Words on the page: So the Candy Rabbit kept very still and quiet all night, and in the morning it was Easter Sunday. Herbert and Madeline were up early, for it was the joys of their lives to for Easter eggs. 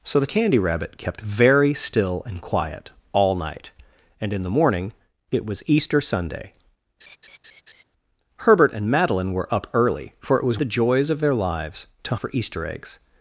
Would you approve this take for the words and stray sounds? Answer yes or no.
no